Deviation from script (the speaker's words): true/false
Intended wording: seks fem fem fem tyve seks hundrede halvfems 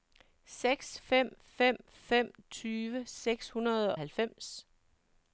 false